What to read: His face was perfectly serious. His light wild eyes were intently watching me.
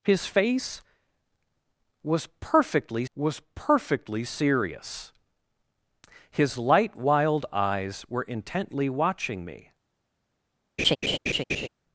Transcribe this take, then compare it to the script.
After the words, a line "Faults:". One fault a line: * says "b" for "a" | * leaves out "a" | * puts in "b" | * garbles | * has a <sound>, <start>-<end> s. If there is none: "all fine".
His face was perfectly was perfectly serious. His light wild eyes were intently watching me.
Faults:
* puts in "was perfectly"
* has a laugh, 10.8-11.7 s